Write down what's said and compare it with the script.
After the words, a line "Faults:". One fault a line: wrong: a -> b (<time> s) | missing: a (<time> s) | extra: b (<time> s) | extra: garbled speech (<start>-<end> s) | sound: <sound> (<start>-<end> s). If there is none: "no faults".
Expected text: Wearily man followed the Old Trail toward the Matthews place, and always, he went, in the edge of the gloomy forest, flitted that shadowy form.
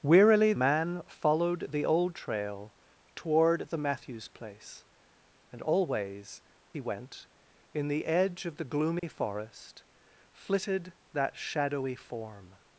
Wearily man followed the Old Trail toward the Matthews place, and always, he went, in the edge of the gloomy forest, flitted that shadowy form.
Faults:
sound: dropout (9.0-9.0 s)